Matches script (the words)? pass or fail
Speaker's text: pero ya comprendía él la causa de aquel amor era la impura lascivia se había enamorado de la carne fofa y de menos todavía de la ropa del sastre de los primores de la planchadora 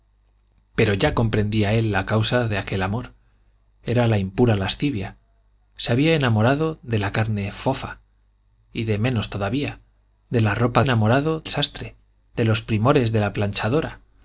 fail